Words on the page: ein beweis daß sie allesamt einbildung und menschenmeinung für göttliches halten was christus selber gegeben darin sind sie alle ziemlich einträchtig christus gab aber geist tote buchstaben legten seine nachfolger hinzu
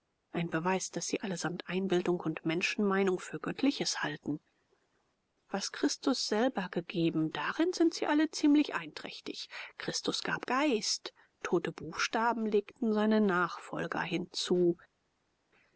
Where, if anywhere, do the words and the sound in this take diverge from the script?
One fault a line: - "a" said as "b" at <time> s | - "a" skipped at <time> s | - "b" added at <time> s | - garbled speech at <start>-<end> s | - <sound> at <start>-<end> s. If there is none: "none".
- "aber" skipped at 10.5 s